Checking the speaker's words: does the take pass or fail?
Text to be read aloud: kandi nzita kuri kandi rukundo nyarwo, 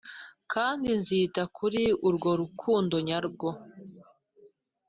fail